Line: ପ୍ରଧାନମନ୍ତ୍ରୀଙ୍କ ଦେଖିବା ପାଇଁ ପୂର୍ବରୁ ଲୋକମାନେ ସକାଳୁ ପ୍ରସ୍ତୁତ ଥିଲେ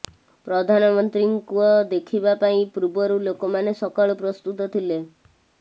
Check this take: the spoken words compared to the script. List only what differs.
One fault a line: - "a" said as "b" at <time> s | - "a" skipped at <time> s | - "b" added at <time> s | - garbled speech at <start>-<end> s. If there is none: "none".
none